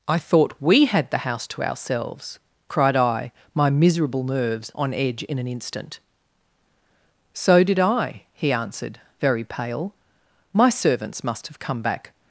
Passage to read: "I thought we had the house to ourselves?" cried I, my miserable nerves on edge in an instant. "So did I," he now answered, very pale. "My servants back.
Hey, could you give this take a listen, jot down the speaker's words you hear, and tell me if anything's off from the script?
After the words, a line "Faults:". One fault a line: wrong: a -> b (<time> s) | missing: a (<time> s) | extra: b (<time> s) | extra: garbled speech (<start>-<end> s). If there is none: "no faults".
"I thought we had the house to ourselves?" cried I, my miserable nerves on edge in an instant. "So did I," he answered, very pale. "My servants must have come back.
Faults:
missing: now (8.5 s)
extra: must have come (11.2 s)